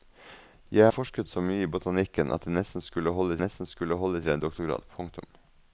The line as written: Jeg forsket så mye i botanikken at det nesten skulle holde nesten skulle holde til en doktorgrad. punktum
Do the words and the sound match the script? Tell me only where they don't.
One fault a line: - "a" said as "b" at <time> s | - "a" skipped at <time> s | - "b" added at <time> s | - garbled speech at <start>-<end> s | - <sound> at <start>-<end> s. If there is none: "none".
none